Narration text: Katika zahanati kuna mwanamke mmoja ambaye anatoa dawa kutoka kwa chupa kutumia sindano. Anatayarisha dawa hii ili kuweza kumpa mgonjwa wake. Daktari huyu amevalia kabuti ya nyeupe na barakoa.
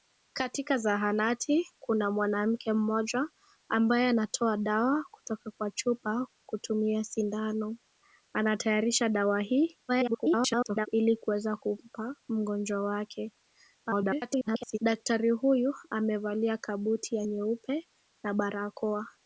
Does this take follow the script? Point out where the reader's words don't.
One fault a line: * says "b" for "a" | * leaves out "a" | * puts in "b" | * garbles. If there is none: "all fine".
* garbles
* garbles